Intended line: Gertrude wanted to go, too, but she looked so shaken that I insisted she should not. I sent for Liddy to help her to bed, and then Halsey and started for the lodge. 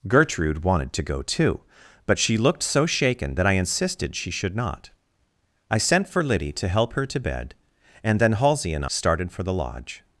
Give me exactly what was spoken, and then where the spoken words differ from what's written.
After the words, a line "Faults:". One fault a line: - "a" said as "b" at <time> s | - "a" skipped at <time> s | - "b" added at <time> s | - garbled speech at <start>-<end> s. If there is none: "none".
Gertrude wanted to go, too, but she looked so shaken that I insisted she should not. I sent for Liddy to help her to bed, and then Halsey and started for the lodge.
Faults:
none